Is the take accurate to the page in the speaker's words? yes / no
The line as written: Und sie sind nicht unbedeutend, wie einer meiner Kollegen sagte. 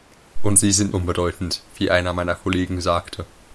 no